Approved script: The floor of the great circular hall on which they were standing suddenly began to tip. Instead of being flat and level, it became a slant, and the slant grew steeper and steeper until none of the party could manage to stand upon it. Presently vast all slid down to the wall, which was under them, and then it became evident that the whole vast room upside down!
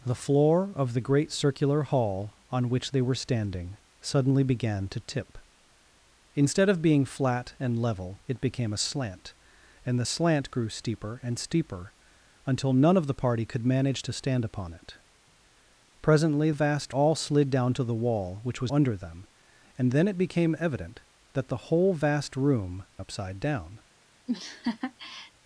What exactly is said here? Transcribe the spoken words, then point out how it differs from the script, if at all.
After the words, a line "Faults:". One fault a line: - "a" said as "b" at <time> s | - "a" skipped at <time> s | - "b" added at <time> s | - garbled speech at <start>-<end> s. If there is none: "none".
The floor of the great circular hall on which they were standing suddenly began to tip. Instead of being flat and level, it became a slant, and the slant grew steeper and steeper until none of the party could manage to stand upon it. Presently vast all slid down to the wall, which was under them, and then it became evident that the whole vast room upside down!
Faults:
none